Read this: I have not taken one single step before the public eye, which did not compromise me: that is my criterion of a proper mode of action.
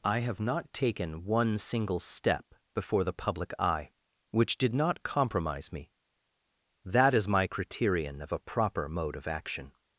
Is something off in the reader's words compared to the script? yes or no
no